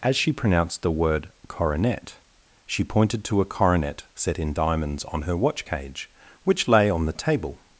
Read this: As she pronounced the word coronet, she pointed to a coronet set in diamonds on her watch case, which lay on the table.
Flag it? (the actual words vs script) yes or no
yes